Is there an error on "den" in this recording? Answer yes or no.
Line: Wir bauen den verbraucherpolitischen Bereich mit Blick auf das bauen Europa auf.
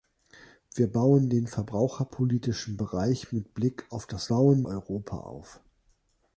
no